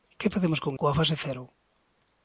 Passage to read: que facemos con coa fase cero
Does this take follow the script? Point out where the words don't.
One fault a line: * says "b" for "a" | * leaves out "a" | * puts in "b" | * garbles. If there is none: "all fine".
all fine